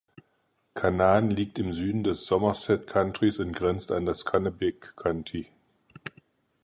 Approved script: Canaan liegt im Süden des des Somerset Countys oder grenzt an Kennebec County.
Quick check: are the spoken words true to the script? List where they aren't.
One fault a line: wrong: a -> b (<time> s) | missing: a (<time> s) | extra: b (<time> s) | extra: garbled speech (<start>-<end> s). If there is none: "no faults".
missing: des (2.2 s)
wrong: oder -> und (3.4 s)
extra: das (4.1 s)